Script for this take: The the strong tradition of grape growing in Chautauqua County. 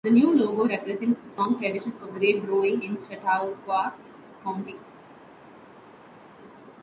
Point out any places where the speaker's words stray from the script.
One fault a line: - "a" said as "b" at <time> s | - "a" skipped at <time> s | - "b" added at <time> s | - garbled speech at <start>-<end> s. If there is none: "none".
- "new logo represents" added at 0.1 s